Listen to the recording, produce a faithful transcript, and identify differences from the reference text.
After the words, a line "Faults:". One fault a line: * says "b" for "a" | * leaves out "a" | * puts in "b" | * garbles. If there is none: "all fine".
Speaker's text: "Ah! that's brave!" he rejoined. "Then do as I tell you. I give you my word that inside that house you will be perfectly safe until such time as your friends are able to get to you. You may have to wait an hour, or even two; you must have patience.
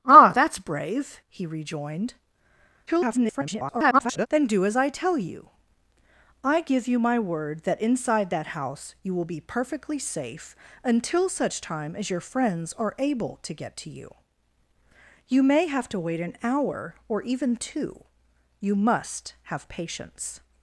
"Ah! that's brave!" he rejoined. [garbled] "Then do as I tell you. I give you my word that inside that house you will be perfectly safe until such time as your friends are able to get to you. You may have to wait an hour, or even two; you must have patience.
Faults:
* garbles